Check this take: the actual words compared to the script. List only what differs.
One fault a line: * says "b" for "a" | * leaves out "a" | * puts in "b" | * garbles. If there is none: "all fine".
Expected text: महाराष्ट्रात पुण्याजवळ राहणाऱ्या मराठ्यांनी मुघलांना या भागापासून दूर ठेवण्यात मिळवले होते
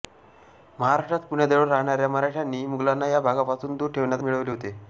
all fine